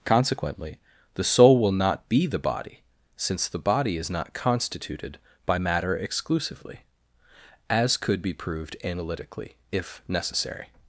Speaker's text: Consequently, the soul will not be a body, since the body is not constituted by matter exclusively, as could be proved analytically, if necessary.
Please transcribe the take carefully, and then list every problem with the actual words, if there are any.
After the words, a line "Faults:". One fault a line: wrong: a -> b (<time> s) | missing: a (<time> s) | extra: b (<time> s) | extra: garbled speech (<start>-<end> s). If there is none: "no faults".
Consequently, the soul will not be the body, since the body is not constituted by matter exclusively, as could be proved analytically, if necessary.
Faults:
wrong: a -> the (2.2 s)